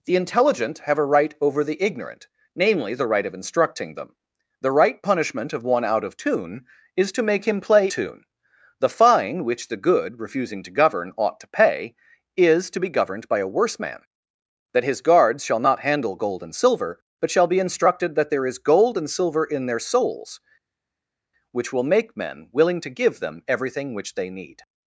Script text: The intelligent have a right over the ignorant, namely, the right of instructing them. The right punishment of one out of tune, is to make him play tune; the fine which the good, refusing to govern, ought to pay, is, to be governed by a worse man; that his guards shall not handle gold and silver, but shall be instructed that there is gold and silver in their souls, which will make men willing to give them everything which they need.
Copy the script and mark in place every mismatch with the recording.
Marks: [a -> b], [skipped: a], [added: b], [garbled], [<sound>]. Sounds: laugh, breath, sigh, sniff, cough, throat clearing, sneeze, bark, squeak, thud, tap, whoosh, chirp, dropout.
The intelligent have a right over the ignorant, namely, the right of instructing them. The right punishment of one out of tune, is to make him play tune; the fine which the good, refusing to govern, ought to pay, is, to be governed by a worse man; that his guards shall not handle gold and silver, but shall be instructed that there is gold and silver in their souls, which will make men willing to give them everything which they need.